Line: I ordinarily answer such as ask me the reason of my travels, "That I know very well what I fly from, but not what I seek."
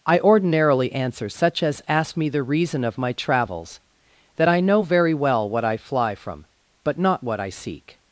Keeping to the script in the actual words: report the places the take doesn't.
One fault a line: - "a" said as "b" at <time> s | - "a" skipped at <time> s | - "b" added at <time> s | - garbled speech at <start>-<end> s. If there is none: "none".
none